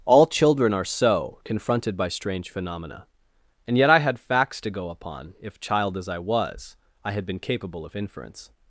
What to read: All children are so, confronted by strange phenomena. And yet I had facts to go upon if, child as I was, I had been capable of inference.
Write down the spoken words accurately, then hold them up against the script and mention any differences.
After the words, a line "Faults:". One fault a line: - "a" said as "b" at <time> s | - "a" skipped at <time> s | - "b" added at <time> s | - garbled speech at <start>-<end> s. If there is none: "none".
All children are so, confronted by strange phenomena. And yet I had facts to go upon if, child as I was, I had been capable of inference.
Faults:
none